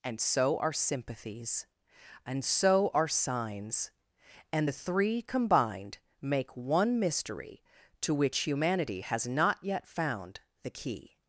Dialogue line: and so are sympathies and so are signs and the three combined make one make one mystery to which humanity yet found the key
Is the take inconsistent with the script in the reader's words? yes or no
yes